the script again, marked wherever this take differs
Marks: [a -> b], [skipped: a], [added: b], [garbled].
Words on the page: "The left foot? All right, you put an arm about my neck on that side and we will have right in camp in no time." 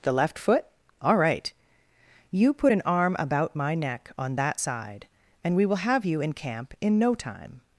"The left foot? All right, you put an arm about my neck on that side and we will have [right -> you] in camp in no time."